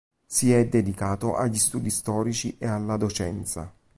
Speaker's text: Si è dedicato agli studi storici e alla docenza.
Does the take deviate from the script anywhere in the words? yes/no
no